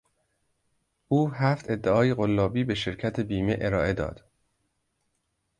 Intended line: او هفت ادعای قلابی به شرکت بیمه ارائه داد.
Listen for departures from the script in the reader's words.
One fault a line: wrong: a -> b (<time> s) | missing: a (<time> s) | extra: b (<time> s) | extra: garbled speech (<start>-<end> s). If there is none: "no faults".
no faults